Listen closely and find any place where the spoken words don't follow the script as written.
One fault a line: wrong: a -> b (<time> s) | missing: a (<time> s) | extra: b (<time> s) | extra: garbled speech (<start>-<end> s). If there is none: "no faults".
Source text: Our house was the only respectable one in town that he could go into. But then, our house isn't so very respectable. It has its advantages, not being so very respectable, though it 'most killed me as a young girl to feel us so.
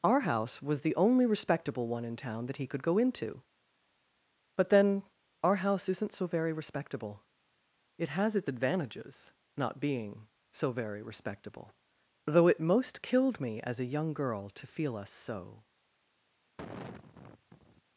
no faults